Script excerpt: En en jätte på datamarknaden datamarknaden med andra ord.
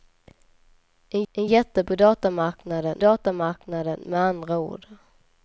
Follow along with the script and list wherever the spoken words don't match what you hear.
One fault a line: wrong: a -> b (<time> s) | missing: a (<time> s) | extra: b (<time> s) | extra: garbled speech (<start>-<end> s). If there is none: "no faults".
no faults